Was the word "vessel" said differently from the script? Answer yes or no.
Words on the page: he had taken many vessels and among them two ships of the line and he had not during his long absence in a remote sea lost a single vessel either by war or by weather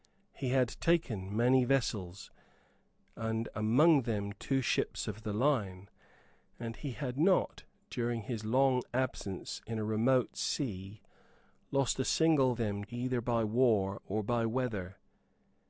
yes